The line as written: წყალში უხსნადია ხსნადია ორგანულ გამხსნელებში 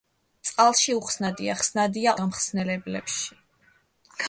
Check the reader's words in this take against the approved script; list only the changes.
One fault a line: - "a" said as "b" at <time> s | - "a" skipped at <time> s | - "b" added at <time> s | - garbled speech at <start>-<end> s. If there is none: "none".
- "ორგანულ" skipped at 2.1 s